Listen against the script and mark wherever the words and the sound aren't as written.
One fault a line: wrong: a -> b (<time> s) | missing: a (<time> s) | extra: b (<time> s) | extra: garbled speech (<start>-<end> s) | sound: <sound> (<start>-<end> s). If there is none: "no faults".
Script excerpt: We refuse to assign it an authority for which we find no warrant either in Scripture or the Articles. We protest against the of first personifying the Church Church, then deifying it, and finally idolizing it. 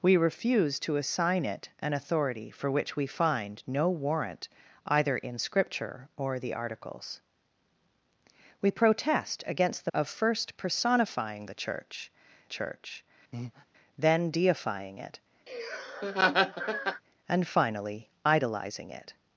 sound: breath (13.3-13.7 s)
sound: laugh (15.5-17.0 s)